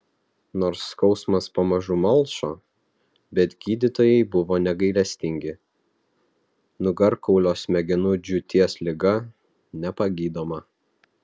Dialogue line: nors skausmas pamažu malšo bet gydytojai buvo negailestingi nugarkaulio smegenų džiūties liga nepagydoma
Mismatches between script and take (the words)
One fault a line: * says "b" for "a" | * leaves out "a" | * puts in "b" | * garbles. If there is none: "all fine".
all fine